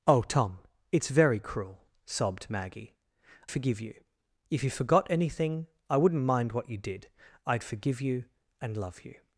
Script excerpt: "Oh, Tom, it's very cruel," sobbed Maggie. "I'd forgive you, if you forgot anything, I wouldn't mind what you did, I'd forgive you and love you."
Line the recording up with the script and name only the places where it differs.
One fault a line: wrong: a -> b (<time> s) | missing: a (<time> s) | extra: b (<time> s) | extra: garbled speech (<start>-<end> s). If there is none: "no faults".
missing: I'd (3.0 s)